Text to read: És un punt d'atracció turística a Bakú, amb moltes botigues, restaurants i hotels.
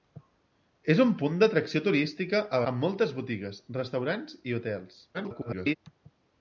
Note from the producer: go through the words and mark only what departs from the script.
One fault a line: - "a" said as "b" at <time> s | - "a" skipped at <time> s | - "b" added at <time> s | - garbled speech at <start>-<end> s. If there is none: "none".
- "Bakú" skipped at 2.6 s
- garbled speech at 5.1-5.8 s